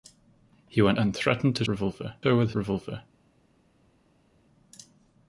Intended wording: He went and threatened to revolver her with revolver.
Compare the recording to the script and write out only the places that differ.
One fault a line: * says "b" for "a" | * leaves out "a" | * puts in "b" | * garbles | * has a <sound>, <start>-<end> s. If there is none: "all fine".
all fine